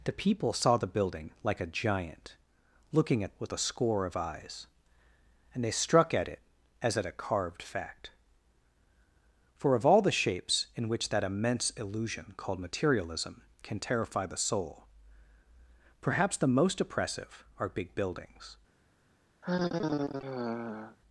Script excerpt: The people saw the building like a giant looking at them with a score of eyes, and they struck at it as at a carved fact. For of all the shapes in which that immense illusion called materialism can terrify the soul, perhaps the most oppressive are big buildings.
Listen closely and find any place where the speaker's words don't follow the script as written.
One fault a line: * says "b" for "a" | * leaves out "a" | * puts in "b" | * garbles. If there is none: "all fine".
* leaves out "them"